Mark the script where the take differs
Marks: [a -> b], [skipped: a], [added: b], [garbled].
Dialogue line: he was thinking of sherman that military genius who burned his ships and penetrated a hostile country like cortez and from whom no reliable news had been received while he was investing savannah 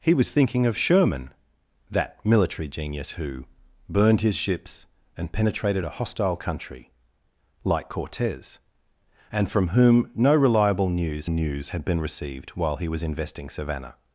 he was thinking of sherman that military genius who burned his ships and penetrated a hostile country like cortez and from whom no reliable news [added: news] had been received while he was investing savannah